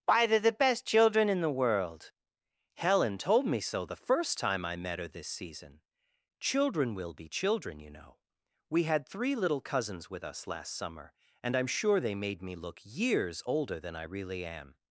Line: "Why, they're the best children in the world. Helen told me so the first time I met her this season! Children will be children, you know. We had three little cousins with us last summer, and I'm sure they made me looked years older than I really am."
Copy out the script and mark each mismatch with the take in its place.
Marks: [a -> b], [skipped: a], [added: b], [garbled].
"Why, they're the best children in the world. Helen told me so the first time I met her this season! Children will be children, you know. We had three little cousins with us last summer, and I'm sure they made me [looked -> look] years older than I really am."